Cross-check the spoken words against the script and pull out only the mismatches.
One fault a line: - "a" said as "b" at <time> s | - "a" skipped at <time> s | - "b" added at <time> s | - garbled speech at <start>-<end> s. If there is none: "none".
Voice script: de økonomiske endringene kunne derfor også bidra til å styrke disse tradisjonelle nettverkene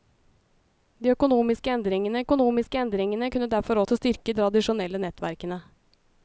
- "økonomiske endringene" added at 2.2 s
- "også bidra" skipped at 3.8 s
- "disse" skipped at 4.4 s